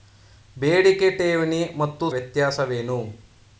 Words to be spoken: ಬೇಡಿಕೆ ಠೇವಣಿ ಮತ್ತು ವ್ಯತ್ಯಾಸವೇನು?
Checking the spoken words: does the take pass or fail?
pass